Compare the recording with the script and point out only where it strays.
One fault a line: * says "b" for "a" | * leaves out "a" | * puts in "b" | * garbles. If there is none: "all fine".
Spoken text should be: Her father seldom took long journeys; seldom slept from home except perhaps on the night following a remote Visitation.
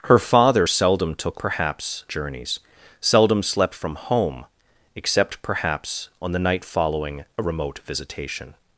* says "perhaps" for "long"